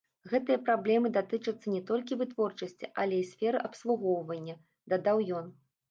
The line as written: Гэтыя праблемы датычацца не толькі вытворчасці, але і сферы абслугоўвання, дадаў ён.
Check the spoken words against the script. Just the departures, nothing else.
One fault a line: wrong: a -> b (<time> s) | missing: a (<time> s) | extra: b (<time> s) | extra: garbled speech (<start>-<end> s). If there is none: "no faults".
no faults